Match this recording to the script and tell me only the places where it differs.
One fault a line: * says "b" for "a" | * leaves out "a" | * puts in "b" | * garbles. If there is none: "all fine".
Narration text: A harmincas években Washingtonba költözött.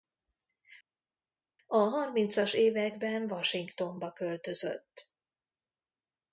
all fine